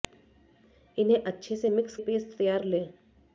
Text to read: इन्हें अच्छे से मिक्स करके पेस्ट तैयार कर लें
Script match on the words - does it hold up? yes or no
no